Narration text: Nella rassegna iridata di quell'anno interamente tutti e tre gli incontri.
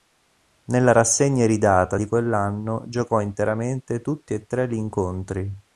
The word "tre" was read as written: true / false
true